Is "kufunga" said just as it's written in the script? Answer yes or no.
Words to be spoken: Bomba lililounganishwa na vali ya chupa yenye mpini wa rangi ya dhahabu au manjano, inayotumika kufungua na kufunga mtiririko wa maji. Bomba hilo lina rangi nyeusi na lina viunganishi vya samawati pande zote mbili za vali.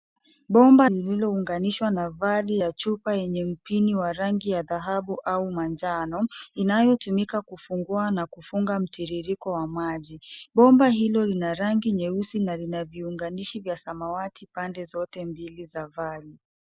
yes